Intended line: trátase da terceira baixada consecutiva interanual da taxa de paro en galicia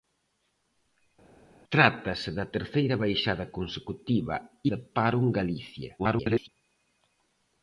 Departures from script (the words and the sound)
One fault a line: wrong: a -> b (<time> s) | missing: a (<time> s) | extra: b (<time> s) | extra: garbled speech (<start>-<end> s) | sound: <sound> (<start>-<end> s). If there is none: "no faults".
missing: interanual da taxa (4.4 s)
extra: garbled speech (6.0-6.5 s)